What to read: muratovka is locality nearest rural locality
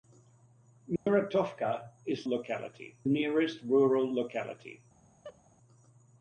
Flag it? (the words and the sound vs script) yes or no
yes